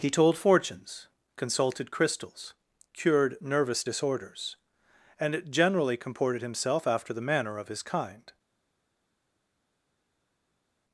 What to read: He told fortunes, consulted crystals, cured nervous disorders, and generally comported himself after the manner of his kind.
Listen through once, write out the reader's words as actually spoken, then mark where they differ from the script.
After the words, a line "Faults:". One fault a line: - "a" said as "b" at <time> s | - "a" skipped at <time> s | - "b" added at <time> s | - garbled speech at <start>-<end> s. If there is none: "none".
He told fortunes, consulted crystals, cured nervous disorders, and generally comported himself after the manner of his kind.
Faults:
none